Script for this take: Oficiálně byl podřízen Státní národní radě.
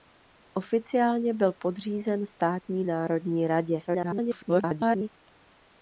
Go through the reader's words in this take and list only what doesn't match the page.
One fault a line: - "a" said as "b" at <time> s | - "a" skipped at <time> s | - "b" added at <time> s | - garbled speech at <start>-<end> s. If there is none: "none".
- garbled speech at 3.9-5.1 s